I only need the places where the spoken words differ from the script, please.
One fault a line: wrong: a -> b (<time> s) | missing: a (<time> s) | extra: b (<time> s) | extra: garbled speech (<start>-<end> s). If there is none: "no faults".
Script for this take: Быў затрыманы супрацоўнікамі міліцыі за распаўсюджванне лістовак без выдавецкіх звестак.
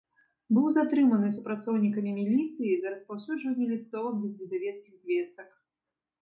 no faults